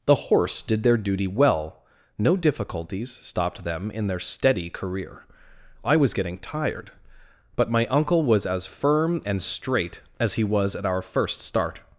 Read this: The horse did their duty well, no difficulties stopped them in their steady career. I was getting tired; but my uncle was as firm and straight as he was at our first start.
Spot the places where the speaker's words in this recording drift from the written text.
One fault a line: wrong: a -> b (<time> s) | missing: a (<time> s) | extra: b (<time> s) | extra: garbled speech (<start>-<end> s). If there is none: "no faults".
no faults